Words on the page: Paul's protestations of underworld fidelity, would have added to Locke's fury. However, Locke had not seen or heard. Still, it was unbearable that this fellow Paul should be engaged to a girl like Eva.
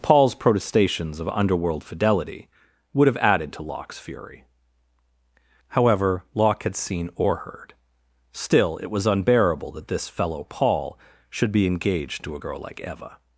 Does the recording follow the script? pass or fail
fail